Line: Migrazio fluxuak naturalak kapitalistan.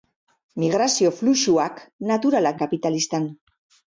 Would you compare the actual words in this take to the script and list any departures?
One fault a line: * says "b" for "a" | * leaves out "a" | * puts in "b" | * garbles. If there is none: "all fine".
all fine